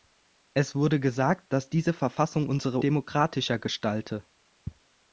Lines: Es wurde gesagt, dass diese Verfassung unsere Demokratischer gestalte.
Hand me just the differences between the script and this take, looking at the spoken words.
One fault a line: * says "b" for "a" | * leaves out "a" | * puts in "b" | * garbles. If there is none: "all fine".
all fine